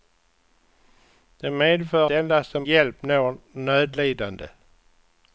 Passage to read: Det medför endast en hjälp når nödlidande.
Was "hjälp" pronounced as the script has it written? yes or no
yes